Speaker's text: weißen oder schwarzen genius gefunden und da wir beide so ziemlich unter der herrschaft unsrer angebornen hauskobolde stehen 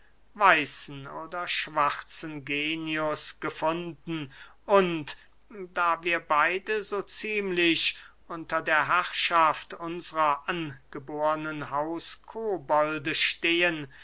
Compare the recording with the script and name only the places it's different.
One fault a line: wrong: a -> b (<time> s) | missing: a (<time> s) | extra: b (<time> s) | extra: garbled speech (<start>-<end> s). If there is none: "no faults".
no faults